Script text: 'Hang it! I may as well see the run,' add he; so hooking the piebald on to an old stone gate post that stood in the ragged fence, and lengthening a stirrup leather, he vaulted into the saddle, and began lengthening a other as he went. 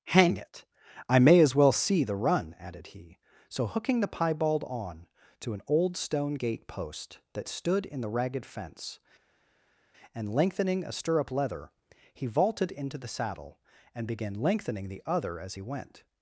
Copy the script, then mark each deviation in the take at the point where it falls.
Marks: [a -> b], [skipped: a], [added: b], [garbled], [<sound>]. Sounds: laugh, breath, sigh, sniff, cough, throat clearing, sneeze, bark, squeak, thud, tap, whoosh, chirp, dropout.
'Hang it! I may as well see the run,' [add -> added] he; so hooking the piebald on to an old stone gate post that stood in the ragged fence, and lengthening a stirrup leather, he vaulted into the saddle, and began lengthening [a -> the] other as he went.